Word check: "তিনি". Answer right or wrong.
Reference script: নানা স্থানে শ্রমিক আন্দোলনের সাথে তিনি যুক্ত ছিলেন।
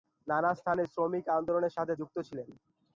wrong